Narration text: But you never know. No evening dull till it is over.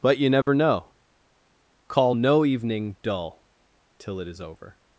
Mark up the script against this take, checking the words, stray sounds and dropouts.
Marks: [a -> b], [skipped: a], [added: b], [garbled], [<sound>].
But you never [dropout] know. [added: Call] No evening dull till it is over.